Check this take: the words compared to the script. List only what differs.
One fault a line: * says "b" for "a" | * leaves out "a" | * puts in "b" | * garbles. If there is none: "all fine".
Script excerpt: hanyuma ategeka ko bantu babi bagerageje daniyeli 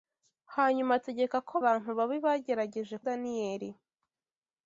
all fine